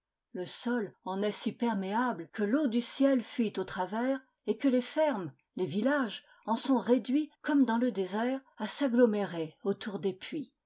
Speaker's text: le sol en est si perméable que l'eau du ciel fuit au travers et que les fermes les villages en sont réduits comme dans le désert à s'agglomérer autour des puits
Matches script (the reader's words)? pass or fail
pass